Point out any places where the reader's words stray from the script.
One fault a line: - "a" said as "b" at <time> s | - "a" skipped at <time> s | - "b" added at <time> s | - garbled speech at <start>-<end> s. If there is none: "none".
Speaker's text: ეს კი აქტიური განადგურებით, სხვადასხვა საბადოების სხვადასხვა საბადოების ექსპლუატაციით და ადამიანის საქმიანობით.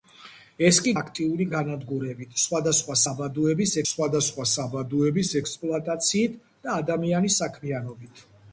none